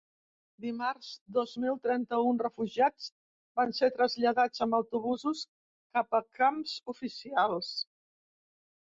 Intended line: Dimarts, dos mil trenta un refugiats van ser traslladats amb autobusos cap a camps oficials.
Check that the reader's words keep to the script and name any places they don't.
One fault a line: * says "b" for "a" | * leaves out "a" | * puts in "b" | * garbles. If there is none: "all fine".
all fine